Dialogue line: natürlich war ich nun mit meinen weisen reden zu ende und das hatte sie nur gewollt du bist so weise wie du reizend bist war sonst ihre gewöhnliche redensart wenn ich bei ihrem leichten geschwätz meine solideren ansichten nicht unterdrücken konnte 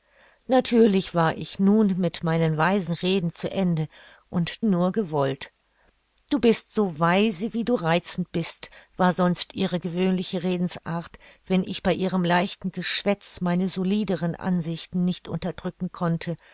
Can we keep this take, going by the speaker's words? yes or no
no